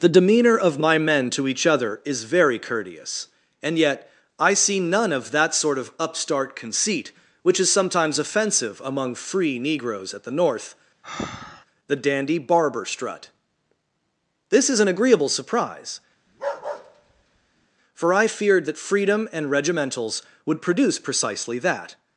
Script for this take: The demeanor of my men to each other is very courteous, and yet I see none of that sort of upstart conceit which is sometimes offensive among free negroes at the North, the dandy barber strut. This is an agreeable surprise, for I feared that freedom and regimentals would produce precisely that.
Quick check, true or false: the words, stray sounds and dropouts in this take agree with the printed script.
false